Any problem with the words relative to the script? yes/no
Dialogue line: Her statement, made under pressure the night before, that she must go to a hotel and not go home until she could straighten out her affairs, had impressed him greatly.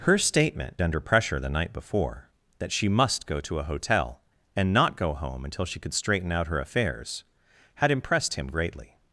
yes